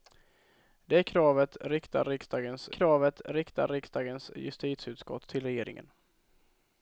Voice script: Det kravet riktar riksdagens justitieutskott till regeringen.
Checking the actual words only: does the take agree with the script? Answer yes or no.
no